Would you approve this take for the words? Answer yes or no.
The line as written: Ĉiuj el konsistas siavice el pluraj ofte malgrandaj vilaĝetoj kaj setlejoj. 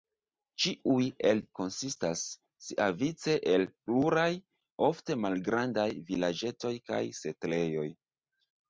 yes